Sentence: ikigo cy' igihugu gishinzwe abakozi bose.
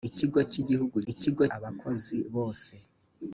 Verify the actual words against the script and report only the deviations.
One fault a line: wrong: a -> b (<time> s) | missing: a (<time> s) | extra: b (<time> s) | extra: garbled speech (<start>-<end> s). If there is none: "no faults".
wrong: gishinzwe -> ikigo (1.1 s)